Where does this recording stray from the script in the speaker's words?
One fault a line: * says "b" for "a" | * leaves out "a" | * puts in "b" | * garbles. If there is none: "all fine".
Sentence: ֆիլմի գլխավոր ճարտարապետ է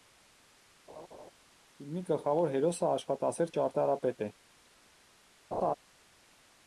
* puts in "հերոսը աշխատասեր"